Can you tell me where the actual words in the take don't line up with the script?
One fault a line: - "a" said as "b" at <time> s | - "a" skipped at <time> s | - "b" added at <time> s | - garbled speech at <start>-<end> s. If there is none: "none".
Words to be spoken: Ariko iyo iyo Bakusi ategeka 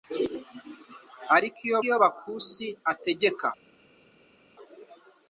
none